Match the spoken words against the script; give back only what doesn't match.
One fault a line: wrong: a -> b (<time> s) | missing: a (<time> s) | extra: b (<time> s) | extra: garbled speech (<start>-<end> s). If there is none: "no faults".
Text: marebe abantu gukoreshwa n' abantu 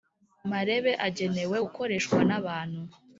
wrong: abantu -> agenewe (1.1 s)